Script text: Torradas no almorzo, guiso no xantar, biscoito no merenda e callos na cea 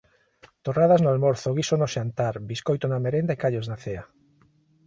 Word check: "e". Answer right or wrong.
right